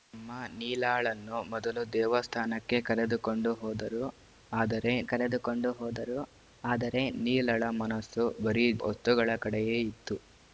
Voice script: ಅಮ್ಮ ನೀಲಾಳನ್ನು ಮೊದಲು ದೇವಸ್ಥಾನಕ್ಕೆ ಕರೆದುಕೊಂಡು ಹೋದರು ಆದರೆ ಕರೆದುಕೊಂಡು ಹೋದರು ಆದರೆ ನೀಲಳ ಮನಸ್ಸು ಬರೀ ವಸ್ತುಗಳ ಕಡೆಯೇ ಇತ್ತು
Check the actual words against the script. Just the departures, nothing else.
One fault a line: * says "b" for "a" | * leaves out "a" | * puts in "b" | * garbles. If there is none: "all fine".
all fine